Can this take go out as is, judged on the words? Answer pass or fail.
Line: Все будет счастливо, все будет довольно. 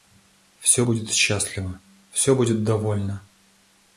pass